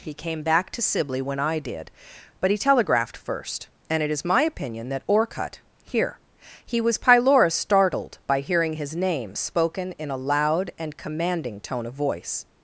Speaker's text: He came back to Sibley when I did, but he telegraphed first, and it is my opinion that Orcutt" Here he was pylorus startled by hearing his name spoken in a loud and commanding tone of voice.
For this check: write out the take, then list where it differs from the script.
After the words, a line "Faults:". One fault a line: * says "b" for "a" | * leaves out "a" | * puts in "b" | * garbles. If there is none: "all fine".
He came back to Sibley when I did, but he telegraphed first, and it is my opinion that Orcutt" Here he was pylorus startled by hearing his name spoken in a loud and commanding tone of voice.
Faults:
all fine